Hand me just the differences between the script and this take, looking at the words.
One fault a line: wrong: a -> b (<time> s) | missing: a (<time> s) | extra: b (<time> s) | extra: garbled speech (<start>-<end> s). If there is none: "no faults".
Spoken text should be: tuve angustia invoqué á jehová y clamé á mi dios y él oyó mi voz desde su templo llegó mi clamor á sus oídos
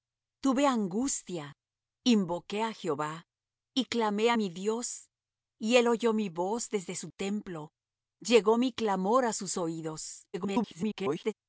extra: garbled speech (10.3-11.3 s)